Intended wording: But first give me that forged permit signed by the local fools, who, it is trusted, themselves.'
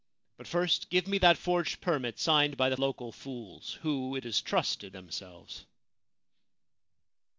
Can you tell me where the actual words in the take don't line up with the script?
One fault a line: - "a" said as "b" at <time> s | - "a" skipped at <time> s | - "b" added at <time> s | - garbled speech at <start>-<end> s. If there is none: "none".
none